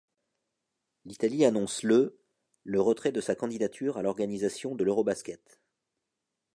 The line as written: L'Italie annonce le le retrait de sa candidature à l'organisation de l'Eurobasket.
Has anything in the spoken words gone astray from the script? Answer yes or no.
no